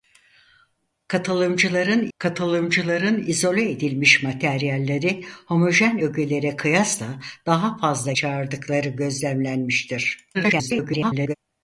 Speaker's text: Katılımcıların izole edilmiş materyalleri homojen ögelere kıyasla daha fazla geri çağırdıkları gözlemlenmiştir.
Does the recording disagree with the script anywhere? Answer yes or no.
yes